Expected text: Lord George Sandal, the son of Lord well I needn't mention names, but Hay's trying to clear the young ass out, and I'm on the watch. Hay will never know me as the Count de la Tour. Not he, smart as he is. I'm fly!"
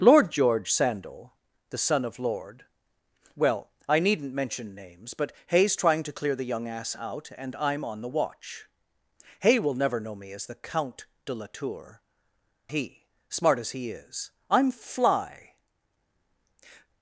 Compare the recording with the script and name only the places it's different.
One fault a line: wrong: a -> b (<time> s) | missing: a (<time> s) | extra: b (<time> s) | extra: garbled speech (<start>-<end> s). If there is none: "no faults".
missing: Not (12.0 s)